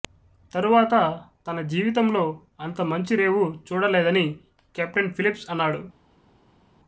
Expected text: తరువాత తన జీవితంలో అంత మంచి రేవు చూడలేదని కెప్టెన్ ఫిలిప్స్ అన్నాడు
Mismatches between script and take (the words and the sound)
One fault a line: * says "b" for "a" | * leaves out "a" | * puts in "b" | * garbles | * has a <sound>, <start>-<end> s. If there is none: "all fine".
all fine